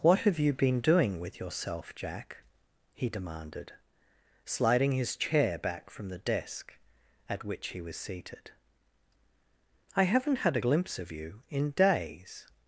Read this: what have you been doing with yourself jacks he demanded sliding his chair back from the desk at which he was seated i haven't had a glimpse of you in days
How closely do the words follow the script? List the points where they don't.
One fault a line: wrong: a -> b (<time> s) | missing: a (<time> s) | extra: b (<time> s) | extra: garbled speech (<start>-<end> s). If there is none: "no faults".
wrong: jacks -> jack (1.9 s)